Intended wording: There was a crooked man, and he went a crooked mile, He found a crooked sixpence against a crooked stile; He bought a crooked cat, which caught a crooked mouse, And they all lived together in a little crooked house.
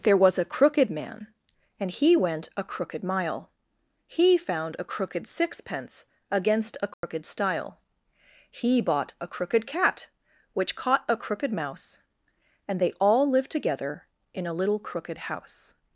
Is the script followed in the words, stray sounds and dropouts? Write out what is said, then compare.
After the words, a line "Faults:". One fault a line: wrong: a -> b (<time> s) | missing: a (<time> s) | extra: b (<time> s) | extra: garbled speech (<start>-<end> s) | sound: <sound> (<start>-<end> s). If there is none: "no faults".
There was a crooked man, and he went a crooked mile, He found a crooked sixpence against a crooked stile; He bought a crooked cat, which caught a crooked mouse, And they all lived together in a little crooked house.
Faults:
sound: dropout (6.9-7.0 s)